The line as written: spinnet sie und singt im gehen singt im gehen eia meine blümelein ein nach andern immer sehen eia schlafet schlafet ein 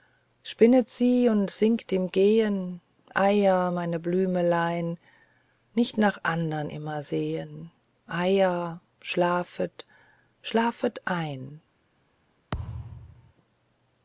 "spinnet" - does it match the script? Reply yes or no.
yes